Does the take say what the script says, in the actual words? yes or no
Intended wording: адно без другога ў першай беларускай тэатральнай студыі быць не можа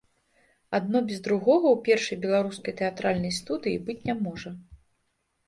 yes